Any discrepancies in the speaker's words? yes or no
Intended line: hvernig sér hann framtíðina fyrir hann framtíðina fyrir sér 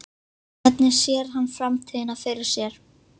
yes